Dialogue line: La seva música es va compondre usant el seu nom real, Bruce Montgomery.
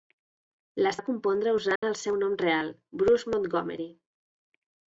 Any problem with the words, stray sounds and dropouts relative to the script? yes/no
yes